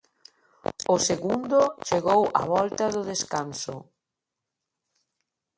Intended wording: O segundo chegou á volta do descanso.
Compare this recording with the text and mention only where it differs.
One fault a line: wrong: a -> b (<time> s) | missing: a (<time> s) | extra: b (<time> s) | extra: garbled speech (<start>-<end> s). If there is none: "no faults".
no faults